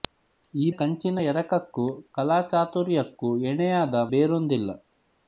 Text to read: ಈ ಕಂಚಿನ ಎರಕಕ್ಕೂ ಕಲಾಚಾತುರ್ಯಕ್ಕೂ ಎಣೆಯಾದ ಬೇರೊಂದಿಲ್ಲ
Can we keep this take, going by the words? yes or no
yes